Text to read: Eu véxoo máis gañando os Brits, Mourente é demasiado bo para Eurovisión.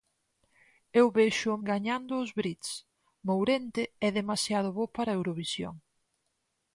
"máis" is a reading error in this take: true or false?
true